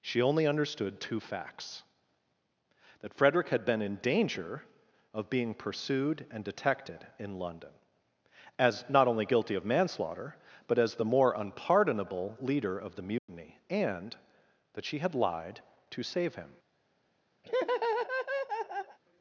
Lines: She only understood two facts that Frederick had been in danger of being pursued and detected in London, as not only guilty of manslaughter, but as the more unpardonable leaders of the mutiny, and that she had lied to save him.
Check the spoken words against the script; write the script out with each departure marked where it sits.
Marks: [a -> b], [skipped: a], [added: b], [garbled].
She only understood two facts that Frederick had been in danger of being pursued and detected in London, as not only guilty of manslaughter, but as the more unpardonable [leaders -> leader] of the mutiny, and that she had lied to save him.